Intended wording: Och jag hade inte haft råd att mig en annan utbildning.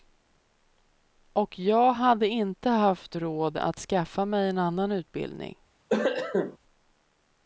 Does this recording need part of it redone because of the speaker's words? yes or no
yes